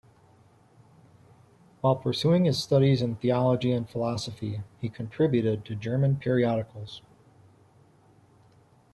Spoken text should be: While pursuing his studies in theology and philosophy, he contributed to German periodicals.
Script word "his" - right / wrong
right